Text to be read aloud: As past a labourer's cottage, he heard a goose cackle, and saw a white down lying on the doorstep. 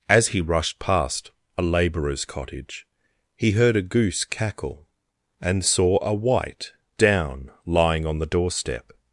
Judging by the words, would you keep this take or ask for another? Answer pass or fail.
fail